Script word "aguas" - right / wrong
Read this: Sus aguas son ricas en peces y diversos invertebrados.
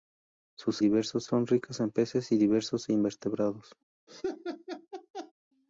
wrong